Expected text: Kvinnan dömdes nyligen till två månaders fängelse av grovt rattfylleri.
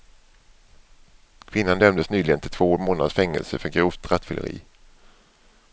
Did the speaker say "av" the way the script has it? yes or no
no